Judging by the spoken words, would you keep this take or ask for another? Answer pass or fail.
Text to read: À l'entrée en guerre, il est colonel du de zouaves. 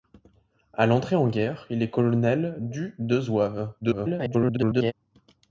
fail